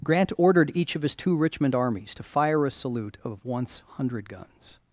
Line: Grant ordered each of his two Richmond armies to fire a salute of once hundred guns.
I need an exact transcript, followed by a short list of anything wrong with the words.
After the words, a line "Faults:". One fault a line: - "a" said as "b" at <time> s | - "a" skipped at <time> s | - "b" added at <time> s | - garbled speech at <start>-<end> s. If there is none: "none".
Grant ordered each of his two Richmond armies to fire a salute of once hundred guns.
Faults:
none